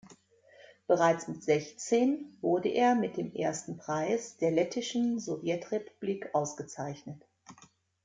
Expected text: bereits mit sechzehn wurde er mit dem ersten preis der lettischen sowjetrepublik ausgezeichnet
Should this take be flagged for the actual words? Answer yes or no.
no